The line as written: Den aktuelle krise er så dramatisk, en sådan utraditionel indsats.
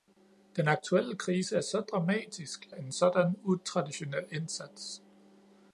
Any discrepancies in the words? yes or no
no